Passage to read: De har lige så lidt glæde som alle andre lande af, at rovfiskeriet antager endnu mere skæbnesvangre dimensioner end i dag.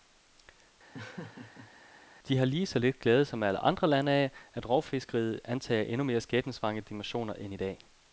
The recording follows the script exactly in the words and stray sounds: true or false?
false